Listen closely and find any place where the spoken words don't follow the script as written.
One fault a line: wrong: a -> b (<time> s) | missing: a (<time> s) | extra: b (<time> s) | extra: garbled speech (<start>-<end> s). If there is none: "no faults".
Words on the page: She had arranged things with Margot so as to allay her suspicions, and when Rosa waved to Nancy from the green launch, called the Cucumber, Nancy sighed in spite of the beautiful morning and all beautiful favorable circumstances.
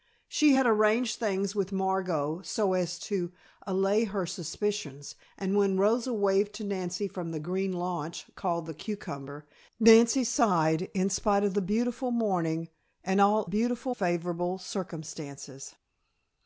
no faults